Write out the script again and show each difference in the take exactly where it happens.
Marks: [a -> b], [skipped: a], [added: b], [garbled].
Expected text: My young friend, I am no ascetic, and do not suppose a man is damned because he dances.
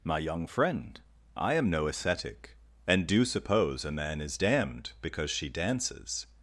My young friend, I am no ascetic, and do [skipped: not] suppose a man is damned because [he -> she] dances.